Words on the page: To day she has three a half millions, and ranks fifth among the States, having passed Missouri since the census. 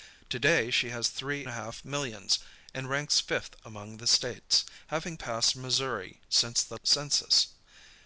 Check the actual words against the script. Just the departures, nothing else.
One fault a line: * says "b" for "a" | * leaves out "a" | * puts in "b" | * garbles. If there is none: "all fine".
all fine